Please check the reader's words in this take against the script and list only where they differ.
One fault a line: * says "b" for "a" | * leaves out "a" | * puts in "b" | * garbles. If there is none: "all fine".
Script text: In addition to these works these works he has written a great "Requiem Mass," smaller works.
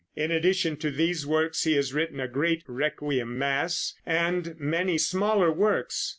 * leaves out "these works"
* puts in "and many"